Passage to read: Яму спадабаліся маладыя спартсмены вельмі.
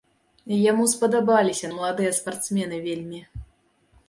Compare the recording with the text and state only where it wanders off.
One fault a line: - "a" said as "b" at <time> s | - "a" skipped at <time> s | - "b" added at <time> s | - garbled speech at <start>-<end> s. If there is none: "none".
none